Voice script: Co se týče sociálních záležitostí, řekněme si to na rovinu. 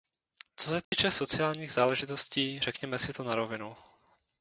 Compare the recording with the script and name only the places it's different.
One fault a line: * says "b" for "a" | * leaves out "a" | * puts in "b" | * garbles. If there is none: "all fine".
all fine